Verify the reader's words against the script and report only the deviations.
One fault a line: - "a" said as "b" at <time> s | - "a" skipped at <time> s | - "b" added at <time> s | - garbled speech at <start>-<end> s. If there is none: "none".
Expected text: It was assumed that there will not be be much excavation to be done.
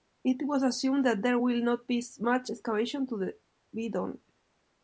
- "be" skipped at 2.0 s